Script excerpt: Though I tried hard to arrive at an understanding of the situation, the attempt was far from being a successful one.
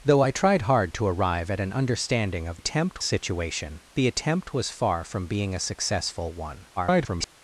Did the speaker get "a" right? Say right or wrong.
right